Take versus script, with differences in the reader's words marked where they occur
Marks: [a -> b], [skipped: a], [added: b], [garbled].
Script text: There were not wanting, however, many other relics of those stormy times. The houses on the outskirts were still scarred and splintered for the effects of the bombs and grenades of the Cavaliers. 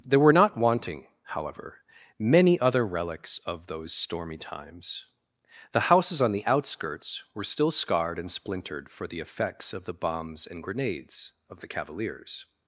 There were not wanting, however, many other relics of those stormy times. The houses on the outskirts were still scarred and splintered for the effects of the bombs and grenades of the Cavaliers.